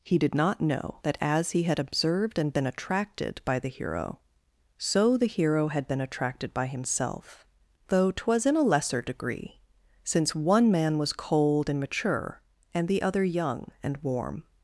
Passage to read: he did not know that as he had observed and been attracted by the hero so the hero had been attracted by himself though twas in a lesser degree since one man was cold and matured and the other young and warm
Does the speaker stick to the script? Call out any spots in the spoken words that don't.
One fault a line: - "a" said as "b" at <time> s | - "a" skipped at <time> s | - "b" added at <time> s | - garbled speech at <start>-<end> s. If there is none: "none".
- "matured" said as "mature" at 11.8 s